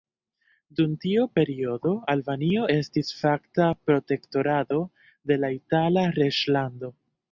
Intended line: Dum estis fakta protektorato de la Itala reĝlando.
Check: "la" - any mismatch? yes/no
no